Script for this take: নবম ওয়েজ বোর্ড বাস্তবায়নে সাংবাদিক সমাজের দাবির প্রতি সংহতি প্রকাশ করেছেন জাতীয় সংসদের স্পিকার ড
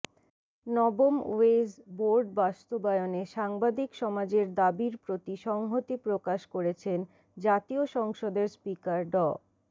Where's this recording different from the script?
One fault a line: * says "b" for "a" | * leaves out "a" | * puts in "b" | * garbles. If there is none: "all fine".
all fine